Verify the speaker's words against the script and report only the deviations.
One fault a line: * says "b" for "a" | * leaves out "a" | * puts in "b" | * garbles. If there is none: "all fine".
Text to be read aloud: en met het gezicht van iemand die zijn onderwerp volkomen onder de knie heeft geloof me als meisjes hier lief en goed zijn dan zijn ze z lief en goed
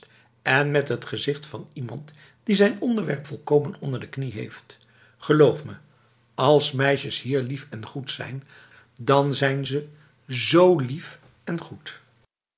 all fine